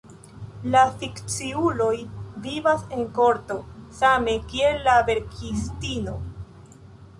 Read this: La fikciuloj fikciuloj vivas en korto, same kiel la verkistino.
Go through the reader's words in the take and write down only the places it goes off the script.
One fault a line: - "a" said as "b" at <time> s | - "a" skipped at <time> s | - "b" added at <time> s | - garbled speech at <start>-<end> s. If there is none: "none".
- "fikciuloj" skipped at 1.9 s